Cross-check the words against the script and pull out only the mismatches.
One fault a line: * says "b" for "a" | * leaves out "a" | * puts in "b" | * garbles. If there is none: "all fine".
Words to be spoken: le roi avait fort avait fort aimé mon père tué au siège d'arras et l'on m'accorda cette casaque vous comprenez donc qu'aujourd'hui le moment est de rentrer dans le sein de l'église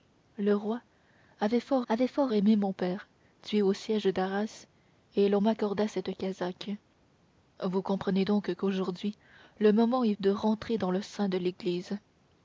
all fine